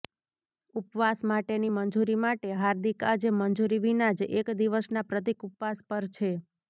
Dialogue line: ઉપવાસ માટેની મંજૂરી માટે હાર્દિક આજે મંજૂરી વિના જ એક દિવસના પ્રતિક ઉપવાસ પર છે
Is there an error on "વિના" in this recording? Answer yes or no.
no